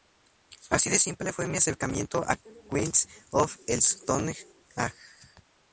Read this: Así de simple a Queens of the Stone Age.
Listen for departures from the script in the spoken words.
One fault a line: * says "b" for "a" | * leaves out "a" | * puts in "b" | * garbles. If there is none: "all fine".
* puts in "fue mi acercamiento"